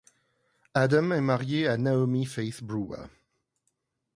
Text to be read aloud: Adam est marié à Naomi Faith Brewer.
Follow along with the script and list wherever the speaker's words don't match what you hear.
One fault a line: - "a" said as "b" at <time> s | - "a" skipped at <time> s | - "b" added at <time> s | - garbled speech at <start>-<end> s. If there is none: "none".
none